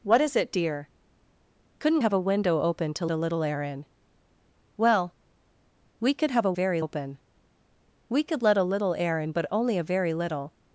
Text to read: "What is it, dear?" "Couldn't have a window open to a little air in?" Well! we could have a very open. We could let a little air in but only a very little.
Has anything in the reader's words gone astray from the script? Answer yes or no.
no